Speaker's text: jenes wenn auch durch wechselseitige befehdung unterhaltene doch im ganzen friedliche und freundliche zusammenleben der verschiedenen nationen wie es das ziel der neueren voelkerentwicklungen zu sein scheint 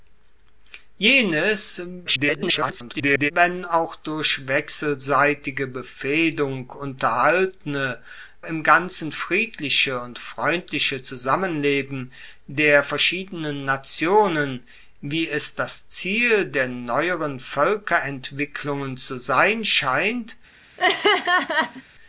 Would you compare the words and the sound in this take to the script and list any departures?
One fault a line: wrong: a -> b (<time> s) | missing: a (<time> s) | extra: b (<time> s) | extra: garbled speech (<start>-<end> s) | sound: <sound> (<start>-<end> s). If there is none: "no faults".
extra: garbled speech (2.1-3.3 s)
missing: doch (8.0 s)
sound: laugh (20.8-21.8 s)